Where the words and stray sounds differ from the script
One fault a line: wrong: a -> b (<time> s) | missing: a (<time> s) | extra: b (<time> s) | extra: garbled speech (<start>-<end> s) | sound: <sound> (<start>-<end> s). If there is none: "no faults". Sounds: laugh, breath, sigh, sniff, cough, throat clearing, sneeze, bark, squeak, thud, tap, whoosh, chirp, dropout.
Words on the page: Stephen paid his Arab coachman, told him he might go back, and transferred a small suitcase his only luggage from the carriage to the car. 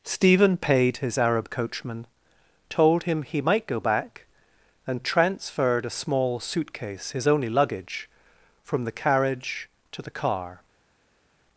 no faults